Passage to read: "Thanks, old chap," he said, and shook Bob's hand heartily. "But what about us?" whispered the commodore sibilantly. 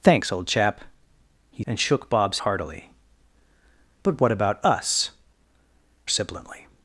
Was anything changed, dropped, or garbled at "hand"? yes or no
yes